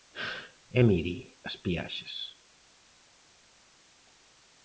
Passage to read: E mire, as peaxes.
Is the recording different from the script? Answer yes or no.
no